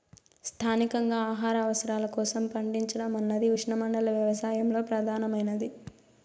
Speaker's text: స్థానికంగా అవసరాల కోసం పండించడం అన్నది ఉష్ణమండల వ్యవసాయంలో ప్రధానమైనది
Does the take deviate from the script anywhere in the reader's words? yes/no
yes